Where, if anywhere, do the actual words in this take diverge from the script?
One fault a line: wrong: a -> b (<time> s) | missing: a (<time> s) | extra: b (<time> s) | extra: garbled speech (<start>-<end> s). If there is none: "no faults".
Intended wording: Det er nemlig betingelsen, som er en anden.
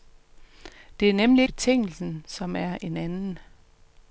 no faults